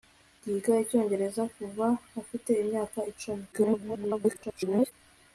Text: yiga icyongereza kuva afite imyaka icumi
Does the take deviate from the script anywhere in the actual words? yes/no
yes